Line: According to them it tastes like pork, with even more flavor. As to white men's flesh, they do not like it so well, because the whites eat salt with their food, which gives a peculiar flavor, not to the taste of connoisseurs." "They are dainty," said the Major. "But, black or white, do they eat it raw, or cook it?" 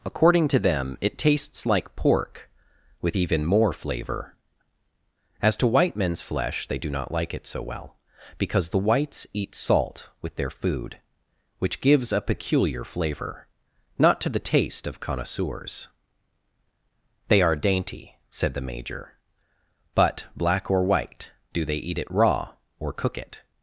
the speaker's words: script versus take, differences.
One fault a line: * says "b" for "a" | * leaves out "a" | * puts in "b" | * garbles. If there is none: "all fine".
all fine